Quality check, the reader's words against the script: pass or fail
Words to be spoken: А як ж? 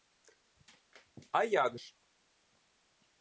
pass